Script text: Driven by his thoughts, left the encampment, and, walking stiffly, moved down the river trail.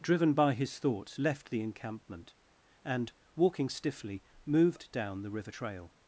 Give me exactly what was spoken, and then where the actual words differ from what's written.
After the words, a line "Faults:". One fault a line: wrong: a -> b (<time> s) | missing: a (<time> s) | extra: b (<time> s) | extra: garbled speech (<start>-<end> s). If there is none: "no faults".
Driven by his thoughts, left the encampment, and, walking stiffly, moved down the river trail.
Faults:
no faults